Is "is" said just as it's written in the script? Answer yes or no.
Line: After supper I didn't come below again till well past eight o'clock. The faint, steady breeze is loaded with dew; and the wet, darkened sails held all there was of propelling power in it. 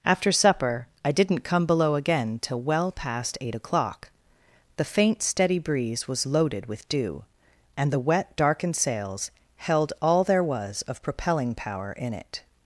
no